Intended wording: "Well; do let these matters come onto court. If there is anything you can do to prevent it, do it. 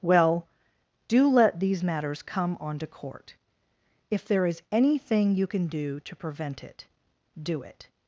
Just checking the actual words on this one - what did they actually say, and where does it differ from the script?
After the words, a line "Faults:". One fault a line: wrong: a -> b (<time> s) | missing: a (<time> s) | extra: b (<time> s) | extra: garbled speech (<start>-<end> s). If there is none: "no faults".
"Well; do let these matters come onto court. If there is anything you can do to prevent it, do it.
Faults:
no faults